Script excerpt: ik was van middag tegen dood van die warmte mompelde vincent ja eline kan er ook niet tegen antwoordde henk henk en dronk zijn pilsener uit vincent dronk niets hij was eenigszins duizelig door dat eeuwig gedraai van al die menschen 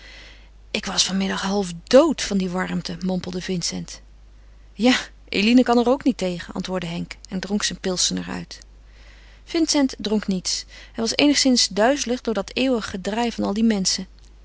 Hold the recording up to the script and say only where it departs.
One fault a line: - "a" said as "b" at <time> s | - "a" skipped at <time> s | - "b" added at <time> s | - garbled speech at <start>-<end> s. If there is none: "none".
- "tegen" said as "half" at 1.4 s
- "henk" skipped at 7.1 s